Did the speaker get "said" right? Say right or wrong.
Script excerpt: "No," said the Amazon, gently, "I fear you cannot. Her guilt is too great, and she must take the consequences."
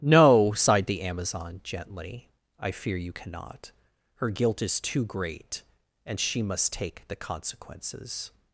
wrong